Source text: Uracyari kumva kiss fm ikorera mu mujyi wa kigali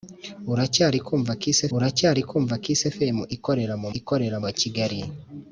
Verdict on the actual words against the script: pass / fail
fail